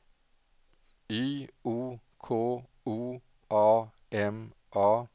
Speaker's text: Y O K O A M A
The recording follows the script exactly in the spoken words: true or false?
true